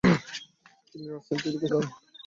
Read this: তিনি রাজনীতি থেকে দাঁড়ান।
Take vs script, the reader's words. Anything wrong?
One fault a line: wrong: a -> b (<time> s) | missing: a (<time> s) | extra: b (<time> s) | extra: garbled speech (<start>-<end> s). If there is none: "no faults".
no faults